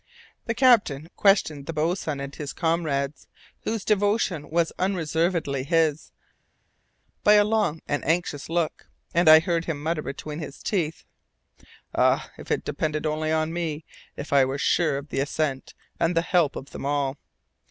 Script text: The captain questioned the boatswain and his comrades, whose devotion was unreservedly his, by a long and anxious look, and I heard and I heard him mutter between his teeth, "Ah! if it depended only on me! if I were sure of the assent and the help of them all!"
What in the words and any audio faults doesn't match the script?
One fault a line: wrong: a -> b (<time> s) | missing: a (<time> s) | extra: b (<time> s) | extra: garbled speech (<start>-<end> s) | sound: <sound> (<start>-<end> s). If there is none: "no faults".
missing: and I heard (9.7 s)